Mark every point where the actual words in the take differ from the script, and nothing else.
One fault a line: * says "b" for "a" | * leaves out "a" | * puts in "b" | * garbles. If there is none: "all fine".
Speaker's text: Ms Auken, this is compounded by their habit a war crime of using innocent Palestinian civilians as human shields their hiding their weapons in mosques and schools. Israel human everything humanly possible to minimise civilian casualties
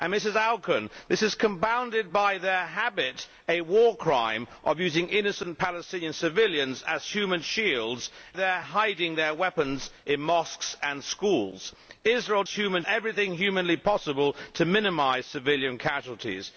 all fine